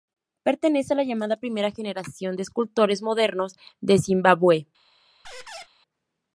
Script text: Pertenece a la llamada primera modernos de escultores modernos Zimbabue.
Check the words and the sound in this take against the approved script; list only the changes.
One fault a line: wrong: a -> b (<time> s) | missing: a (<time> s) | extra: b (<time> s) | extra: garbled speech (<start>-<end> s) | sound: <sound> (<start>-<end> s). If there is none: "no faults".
wrong: modernos -> generación (1.7 s)
extra: de (3.8 s)
sound: squeak (5.2-5.7 s)